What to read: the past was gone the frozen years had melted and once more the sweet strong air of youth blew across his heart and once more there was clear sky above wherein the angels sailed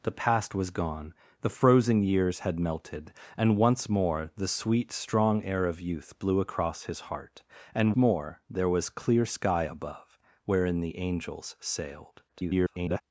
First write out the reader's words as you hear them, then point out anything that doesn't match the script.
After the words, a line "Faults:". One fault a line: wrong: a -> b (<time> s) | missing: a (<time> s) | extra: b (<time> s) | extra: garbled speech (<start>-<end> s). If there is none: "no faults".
the past was gone the frozen years had melted and once more the sweet strong air of youth blew across his heart and more there was clear sky above wherein the angels sailed [garbled]
Faults:
missing: once (7.9 s)
extra: garbled speech (12.3-13.0 s)